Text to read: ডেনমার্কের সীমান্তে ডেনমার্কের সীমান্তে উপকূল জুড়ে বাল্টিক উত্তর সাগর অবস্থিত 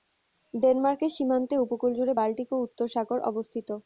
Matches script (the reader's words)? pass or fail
fail